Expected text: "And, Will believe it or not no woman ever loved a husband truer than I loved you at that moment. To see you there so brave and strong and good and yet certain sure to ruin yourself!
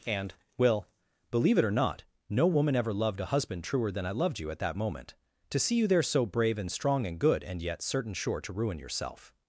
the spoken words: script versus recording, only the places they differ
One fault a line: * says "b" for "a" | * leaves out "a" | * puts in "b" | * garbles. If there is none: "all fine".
all fine